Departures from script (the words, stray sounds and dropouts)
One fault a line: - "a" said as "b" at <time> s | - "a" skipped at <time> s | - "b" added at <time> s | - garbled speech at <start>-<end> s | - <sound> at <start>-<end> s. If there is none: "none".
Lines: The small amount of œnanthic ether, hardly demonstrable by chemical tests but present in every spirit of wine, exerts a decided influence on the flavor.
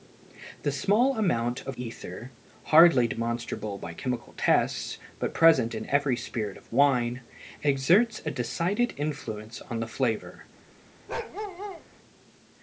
- "œnanthic" skipped at 1.8 s
- bark at 11.1-11.8 s